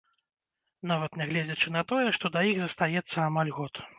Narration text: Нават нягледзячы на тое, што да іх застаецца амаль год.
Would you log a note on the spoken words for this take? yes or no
no